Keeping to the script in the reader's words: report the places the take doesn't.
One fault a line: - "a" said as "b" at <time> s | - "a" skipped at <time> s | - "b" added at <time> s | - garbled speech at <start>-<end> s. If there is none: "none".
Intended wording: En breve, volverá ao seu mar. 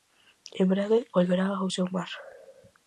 none